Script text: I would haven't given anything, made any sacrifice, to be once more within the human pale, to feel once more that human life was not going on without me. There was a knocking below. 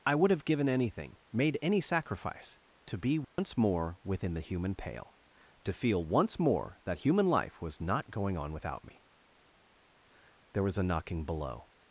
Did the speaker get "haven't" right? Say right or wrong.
wrong